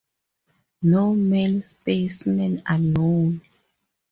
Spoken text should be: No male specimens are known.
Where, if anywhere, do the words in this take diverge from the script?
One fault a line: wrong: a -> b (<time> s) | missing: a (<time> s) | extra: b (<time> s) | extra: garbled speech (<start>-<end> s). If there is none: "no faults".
no faults